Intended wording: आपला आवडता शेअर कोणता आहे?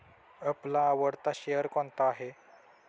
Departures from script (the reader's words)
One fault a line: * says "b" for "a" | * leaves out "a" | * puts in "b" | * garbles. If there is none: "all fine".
all fine